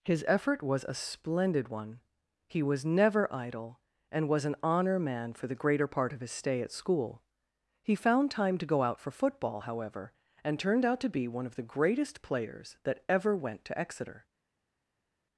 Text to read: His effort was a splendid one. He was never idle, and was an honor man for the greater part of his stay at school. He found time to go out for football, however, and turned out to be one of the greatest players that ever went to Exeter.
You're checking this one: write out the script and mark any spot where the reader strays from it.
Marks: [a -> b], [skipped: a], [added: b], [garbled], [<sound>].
His effort was a splendid one. He was never idle, and was an honor man for the greater part of his stay at school. He found time to go out for football, however, and turned out to be one of the greatest players that ever went to Exeter.